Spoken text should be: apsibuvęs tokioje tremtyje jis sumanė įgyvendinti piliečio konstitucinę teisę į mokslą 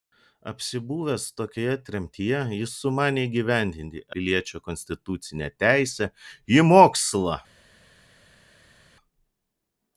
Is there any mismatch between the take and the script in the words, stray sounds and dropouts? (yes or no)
no